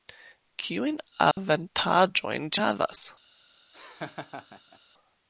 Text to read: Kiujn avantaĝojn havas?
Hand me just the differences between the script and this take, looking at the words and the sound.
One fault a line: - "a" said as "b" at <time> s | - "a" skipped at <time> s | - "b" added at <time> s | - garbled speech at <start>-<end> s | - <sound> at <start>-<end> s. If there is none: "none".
- dropout at 1.3-1.4 s
- laugh at 3.7-4.8 s